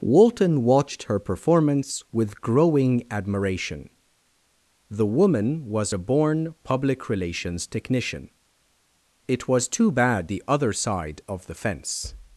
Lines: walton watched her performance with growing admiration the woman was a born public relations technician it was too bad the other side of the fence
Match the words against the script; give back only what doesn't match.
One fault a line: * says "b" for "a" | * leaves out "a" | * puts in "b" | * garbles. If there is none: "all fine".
all fine